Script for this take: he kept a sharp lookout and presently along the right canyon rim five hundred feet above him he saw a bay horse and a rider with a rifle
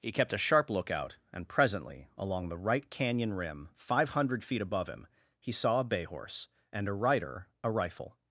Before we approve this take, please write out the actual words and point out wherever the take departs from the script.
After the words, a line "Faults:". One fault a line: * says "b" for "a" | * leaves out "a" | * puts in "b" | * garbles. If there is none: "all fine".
he kept a sharp lookout and presently along the right canyon rim five hundred feet above him he saw a bay horse and a rider a rifle
Faults:
* leaves out "with"